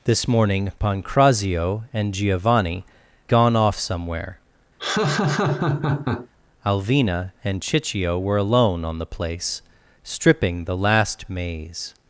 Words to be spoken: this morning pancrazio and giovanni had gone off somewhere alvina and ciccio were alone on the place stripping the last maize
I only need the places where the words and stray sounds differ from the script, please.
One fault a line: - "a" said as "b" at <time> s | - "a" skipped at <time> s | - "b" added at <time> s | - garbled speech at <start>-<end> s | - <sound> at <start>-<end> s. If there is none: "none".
- "had" skipped at 2.9 s
- laugh at 4.8-6.3 s